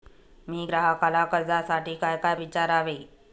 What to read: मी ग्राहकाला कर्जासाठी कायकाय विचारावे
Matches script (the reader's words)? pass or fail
pass